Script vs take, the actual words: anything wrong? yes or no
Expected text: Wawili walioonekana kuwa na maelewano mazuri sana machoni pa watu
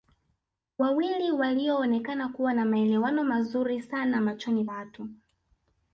yes